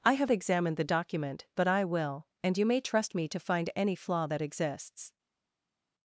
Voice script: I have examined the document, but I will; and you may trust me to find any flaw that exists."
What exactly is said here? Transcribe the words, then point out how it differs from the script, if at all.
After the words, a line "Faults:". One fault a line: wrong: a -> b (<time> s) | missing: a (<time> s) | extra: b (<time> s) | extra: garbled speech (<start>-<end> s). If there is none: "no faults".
I have examined the document, but I will; and you may trust me to find any flaw that exists."
Faults:
no faults